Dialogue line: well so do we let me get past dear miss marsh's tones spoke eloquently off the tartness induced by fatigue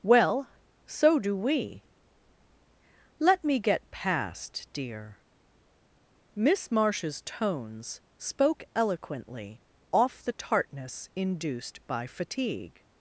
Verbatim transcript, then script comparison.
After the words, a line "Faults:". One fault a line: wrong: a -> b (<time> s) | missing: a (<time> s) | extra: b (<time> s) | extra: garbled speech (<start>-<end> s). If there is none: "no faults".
well so do we let me get past dear miss marsh's tones spoke eloquently off the tartness induced by fatigue
Faults:
no faults